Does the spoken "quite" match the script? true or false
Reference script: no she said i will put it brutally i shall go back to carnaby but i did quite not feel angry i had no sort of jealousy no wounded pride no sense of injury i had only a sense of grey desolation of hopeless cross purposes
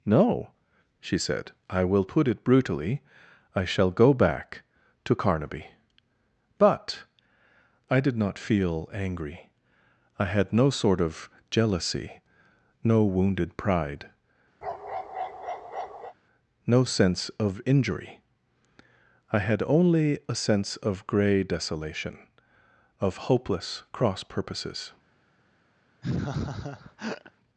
false